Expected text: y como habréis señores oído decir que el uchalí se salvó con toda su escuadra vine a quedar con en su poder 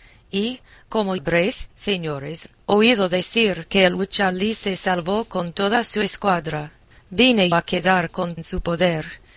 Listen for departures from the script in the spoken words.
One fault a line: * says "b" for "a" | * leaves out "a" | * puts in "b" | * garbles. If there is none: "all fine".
all fine